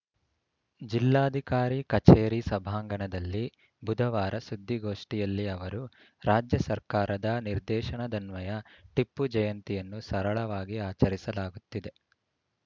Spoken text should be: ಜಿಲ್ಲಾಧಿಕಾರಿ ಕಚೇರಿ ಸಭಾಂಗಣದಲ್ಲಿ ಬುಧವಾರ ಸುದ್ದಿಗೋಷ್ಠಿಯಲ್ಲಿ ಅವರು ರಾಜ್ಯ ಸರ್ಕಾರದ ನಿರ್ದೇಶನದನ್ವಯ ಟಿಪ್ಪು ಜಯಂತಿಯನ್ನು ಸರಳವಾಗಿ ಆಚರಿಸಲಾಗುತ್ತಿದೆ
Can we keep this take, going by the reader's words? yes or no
yes